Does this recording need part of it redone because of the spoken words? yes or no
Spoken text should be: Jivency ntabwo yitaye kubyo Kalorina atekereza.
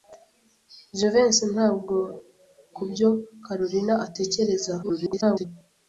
yes